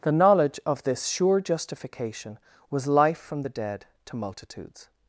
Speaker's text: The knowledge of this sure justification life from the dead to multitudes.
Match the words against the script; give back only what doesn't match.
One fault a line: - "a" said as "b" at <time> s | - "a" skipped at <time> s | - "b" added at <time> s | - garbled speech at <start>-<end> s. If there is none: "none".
- "was" added at 2.7 s